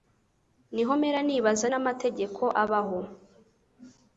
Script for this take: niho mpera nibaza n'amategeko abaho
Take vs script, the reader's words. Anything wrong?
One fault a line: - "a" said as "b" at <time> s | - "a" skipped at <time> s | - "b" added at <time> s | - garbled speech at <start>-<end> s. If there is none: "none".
none